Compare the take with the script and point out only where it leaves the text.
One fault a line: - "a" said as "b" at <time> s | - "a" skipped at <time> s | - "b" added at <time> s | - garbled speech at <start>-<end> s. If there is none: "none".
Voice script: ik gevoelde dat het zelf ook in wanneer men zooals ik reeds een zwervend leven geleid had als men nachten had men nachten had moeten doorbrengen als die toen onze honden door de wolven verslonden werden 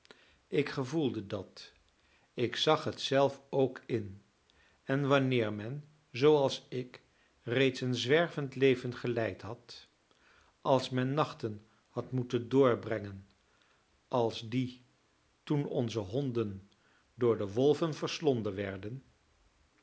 - "ik zag" added at 2.3 s
- "en" added at 4.8 s
- "men nachten had" skipped at 12.1 s